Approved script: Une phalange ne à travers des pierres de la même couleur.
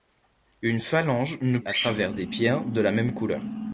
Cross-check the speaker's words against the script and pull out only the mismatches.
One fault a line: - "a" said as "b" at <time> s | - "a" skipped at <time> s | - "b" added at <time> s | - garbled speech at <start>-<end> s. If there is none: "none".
none